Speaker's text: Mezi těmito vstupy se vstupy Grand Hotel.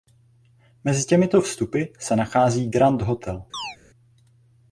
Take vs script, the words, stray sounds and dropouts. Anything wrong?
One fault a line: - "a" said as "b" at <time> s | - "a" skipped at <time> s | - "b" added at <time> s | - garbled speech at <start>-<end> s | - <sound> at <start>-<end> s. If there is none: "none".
- "vstupy" said as "nachází" at 2.1 s
- chirp at 3.5-3.8 s